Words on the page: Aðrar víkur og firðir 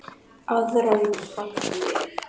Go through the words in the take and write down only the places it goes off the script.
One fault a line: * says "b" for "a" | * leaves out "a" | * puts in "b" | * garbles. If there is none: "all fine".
* leaves out "víkur"